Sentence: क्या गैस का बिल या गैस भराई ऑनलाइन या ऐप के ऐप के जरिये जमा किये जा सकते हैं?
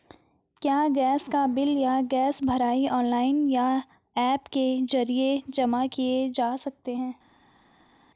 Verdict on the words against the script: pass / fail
fail